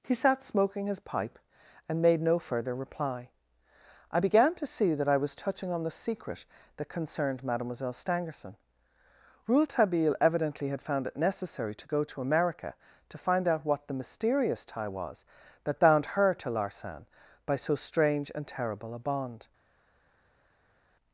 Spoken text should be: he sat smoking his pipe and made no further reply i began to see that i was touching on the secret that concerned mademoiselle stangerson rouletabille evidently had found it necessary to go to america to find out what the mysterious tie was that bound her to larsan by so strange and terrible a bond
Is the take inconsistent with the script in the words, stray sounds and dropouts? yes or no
no